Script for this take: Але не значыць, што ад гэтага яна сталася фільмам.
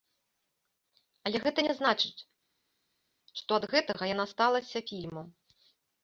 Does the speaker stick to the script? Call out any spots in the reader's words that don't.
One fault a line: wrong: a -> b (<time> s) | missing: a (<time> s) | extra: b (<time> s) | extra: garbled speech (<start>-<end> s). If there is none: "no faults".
extra: гэта (1.4 s)